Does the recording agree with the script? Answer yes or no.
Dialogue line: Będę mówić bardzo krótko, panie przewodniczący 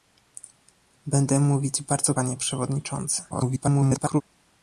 no